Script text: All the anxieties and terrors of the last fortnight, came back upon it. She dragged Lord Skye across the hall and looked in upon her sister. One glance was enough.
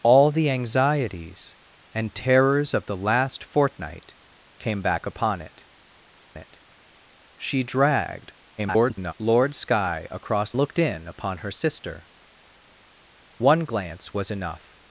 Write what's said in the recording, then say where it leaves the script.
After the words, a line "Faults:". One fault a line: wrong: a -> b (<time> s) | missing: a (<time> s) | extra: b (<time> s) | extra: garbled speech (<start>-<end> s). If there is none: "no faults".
All the anxieties and terrors of the last fortnight, came back upon it it. She dragged [garbled] Lord Skye across looked in upon her sister. One glance was enough.
Faults:
extra: it (6.4 s)
extra: garbled speech (8.6-9.1 s)
missing: the hall and (10.5 s)